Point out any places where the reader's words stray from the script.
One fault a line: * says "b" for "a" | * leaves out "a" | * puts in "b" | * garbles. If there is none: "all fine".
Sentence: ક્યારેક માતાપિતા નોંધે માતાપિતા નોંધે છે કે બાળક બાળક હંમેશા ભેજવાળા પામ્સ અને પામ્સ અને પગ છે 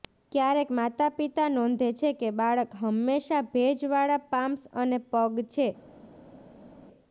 * leaves out "માતાપિતા નોંધે"
* leaves out "બાળક"
* leaves out "પામ્સ અને"